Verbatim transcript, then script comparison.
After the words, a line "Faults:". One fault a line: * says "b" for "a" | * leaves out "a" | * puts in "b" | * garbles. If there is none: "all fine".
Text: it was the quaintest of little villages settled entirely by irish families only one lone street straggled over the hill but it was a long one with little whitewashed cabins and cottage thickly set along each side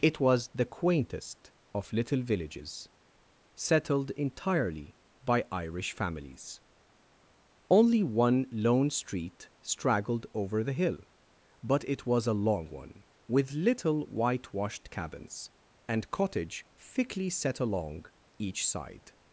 it was the quaintest of little villages settled entirely by irish families only one lone street straggled over the hill but it was a long one with little whitewashed cabins and cottage thickly set along each side
Faults:
all fine